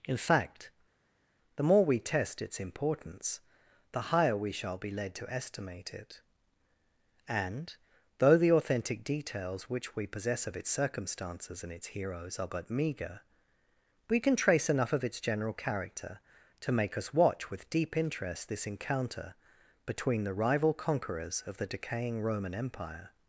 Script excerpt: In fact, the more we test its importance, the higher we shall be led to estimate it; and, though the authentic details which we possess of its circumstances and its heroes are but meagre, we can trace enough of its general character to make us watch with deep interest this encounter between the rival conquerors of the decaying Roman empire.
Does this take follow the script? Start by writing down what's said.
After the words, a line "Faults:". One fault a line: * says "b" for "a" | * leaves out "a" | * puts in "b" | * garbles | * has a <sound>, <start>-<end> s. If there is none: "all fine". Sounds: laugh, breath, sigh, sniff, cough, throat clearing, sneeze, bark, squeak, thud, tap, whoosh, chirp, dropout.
In fact, the more we test its importance, the higher we shall be led to estimate it; and, though the authentic details which we possess of its circumstances and its heroes are but meagre, we can trace enough of its general character to make us watch with deep interest this encounter between the rival conquerors of the decaying Roman empire.
Faults:
all fine